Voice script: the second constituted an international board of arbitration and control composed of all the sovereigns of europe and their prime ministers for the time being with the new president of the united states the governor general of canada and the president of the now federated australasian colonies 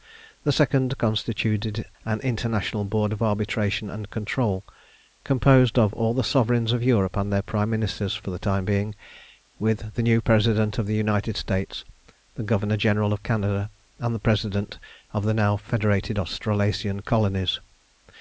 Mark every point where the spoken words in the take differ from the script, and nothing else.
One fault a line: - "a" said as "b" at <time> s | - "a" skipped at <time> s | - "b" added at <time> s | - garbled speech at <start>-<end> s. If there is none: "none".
none